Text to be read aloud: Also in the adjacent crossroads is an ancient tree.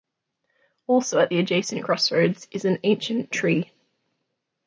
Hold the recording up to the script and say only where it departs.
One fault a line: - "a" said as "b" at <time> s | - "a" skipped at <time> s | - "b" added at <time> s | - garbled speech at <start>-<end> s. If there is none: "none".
- "in" said as "at" at 1.2 s